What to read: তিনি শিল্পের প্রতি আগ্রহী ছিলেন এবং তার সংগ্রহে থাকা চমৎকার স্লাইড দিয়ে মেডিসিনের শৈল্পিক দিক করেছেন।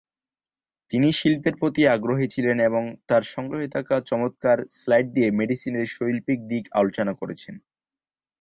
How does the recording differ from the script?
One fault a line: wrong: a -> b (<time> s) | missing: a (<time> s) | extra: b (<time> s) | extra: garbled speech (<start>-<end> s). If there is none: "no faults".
extra: আলোচনা (6.8 s)